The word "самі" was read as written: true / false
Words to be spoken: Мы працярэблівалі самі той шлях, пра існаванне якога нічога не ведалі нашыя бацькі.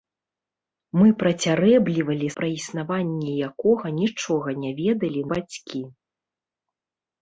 false